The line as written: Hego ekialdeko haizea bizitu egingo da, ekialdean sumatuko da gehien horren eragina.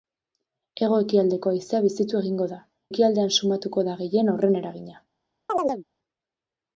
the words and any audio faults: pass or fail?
fail